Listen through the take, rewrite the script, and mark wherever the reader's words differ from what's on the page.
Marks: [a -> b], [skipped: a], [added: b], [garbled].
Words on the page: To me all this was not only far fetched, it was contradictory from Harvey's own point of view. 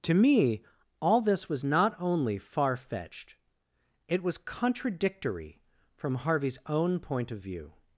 To me all this was not only far fetched, it was contradictory from Harvey's own point of view.